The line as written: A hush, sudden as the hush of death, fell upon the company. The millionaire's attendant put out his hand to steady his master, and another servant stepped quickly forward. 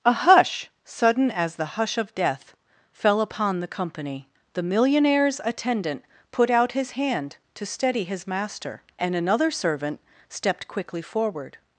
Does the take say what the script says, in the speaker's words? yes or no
yes